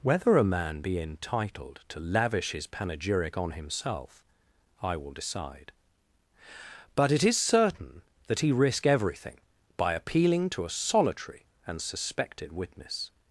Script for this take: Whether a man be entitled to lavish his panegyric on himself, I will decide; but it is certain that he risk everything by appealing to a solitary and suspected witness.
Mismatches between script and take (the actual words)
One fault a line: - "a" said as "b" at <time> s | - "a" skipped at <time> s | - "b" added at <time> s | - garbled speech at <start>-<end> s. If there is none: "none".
none